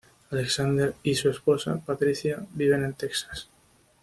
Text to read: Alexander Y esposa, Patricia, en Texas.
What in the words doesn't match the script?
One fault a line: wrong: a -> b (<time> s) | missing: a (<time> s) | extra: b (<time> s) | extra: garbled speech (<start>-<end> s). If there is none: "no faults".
extra: su (1.1 s)
extra: viven (2.5 s)